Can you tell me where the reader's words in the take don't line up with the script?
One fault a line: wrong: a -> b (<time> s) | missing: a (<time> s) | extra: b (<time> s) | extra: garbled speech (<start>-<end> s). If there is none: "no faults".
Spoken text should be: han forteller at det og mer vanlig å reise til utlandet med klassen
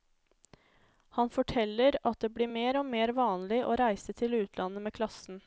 extra: blir mer (2.3 s)